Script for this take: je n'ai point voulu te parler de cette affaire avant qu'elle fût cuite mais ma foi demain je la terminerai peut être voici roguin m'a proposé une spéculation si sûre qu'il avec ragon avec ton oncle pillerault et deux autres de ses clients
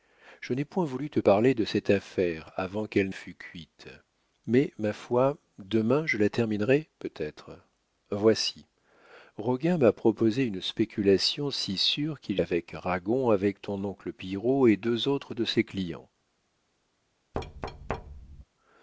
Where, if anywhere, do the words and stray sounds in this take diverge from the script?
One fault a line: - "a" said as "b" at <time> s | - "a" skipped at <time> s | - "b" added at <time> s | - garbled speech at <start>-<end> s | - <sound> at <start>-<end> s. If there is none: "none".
- thud at 17.3-18.4 s